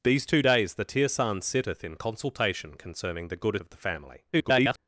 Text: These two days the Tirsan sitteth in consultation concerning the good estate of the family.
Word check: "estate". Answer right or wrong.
wrong